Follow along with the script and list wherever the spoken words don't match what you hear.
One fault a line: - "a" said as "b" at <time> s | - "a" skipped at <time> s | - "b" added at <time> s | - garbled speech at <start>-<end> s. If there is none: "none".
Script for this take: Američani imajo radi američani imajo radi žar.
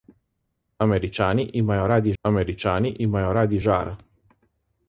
none